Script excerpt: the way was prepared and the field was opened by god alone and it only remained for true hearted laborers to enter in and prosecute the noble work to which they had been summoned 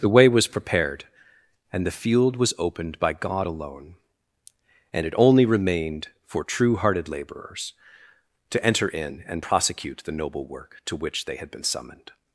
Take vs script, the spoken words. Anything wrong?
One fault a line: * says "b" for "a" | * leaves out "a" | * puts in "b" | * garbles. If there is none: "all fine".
all fine